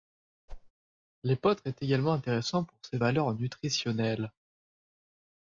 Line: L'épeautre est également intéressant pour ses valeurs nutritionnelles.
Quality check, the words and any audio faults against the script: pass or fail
fail